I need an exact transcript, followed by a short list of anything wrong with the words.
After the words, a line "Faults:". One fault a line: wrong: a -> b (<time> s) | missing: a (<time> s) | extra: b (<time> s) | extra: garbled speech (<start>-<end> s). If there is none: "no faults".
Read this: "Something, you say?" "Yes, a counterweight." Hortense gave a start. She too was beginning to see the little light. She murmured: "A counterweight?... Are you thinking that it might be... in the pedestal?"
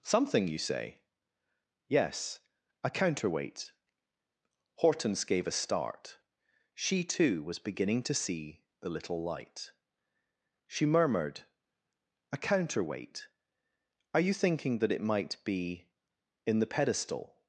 "Something, you say?" "Yes, a counterweight." Hortense gave a start. She too was beginning to see the little light. She murmured: "A counterweight?... Are you thinking that it might be... in the pedestal?"
Faults:
no faults